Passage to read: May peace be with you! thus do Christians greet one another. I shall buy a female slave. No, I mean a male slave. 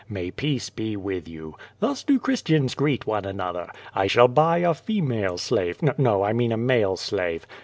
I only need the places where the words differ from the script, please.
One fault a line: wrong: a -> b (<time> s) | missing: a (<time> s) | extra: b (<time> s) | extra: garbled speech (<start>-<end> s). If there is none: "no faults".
no faults